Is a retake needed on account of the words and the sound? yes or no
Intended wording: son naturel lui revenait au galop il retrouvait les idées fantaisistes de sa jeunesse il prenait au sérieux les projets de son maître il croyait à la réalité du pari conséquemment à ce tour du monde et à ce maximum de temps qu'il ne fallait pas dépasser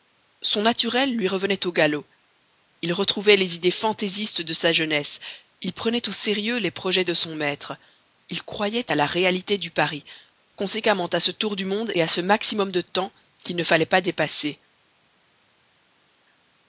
no